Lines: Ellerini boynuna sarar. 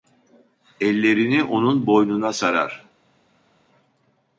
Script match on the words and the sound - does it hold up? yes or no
no